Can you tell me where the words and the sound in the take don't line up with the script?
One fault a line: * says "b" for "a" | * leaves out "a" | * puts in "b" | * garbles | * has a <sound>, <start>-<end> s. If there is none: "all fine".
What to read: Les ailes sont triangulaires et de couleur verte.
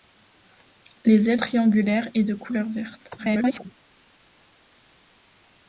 * leaves out "sont"
* garbles